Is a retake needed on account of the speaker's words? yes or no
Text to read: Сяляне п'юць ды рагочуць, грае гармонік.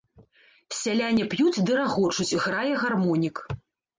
no